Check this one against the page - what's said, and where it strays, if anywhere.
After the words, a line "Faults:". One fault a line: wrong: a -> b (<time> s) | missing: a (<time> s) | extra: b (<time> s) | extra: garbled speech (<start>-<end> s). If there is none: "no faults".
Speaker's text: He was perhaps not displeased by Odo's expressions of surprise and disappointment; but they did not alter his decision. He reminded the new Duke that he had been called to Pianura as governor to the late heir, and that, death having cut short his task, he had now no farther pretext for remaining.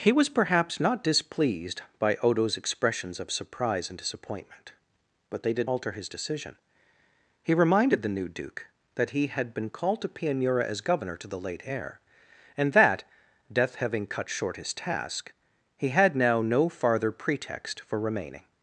He was perhaps not displeased by Odo's expressions of surprise and disappointment; but they did alter his decision. He reminded the new Duke that he had been called to Pianura as governor to the late heir, and that, death having cut short his task, he had now no farther pretext for remaining.
Faults:
missing: not (5.7 s)